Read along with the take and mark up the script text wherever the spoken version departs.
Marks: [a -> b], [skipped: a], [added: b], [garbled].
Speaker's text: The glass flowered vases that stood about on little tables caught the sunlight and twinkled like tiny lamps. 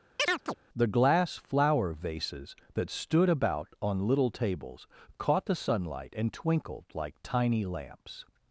The glass [flowered -> flower] vases that stood about on little tables caught the sunlight and twinkled like tiny lamps.